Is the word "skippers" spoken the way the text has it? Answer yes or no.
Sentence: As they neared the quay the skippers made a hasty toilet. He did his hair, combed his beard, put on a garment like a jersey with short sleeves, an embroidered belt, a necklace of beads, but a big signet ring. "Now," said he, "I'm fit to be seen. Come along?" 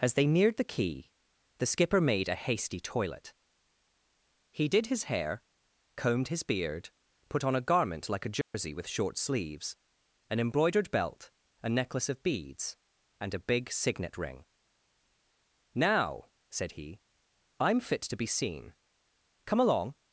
no